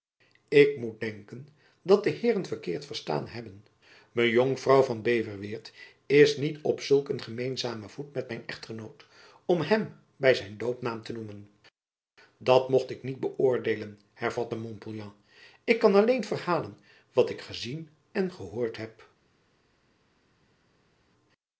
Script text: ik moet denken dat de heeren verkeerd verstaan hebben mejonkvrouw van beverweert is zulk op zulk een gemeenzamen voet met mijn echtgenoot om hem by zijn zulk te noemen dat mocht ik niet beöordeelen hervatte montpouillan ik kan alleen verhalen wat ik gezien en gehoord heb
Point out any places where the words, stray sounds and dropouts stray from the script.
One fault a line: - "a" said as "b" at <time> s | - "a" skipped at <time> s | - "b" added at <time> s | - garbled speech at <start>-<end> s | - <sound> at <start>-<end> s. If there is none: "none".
- "zulk" said as "niet" at 6.4 s
- "zulk" said as "doopnaam" at 10.6 s